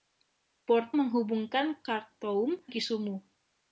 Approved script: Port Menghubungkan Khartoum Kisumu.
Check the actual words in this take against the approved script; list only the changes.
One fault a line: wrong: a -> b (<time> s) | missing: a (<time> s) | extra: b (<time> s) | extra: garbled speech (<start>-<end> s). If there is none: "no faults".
no faults